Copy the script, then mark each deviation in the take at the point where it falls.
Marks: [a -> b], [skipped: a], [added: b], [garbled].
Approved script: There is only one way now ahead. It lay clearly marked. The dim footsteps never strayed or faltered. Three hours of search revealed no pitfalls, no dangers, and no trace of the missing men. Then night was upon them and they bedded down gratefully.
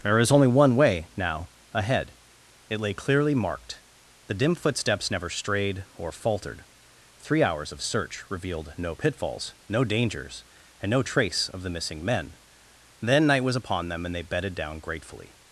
There is only one way now ahead. It lay clearly marked. The dim footsteps never strayed or faltered. Three hours of search revealed no pitfalls, no dangers, and no trace of the missing men. Then night was upon them and they bedded down gratefully.